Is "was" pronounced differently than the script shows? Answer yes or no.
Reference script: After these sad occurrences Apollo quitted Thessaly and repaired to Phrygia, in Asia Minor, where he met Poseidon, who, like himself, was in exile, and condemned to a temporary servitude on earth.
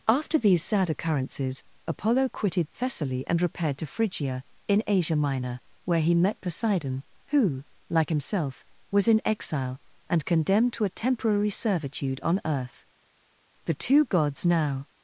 no